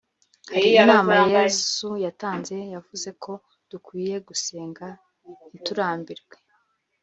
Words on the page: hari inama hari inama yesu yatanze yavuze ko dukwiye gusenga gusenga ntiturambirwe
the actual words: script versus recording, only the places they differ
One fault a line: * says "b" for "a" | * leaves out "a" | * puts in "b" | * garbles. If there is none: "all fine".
* leaves out "hari inama"
* leaves out "gusenga"